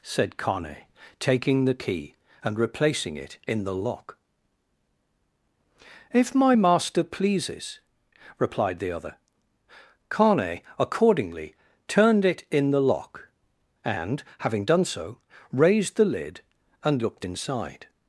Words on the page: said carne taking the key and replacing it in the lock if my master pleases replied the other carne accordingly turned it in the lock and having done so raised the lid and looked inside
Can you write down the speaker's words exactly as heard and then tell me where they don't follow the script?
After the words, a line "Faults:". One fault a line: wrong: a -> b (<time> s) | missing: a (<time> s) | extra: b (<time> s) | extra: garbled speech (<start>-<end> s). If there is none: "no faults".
said carne taking the key and replacing it in the lock if my master pleases replied the other carne accordingly turned it in the lock and having done so raised the lid and looked inside
Faults:
no faults